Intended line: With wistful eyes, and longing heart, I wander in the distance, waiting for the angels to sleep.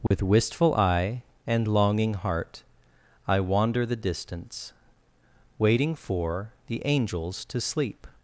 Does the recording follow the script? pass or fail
fail